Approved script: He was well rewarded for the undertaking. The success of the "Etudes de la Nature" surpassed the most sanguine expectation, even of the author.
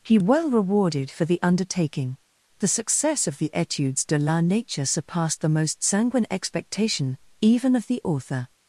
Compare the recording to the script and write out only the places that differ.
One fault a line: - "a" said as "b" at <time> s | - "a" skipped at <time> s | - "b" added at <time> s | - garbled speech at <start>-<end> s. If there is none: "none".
- "was" skipped at 0.2 s